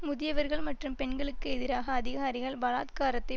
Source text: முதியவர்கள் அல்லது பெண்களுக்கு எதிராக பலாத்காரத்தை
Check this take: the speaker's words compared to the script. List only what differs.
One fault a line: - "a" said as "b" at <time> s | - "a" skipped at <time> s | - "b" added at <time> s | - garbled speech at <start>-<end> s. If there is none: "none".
- "அல்லது" said as "மற்றும்" at 0.6 s
- "அதிகாரிகள்" added at 1.9 s